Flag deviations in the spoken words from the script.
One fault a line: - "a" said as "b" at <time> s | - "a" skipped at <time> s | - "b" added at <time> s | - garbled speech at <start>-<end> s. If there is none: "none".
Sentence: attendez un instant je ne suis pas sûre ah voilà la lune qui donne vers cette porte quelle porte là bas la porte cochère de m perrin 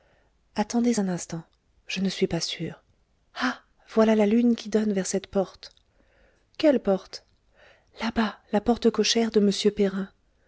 none